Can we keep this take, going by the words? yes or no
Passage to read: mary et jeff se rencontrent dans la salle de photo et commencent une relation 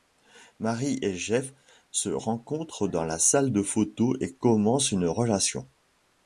yes